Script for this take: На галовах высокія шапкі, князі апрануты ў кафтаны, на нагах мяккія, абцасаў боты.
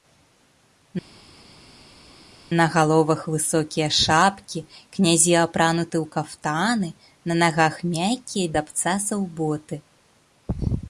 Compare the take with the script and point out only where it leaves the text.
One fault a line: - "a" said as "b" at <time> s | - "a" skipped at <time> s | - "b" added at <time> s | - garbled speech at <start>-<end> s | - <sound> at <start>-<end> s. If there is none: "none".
none